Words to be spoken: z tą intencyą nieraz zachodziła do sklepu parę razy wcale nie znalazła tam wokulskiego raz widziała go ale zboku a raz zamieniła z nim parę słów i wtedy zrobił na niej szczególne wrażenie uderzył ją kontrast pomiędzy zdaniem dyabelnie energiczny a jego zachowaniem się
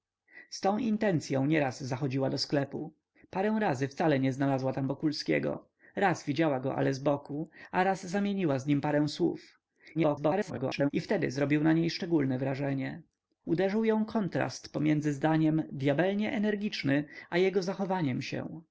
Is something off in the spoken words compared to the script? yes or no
yes